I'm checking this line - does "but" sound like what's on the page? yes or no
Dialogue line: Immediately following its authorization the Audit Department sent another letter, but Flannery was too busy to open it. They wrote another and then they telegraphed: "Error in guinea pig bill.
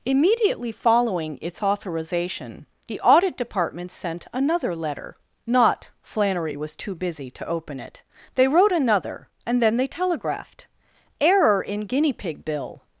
no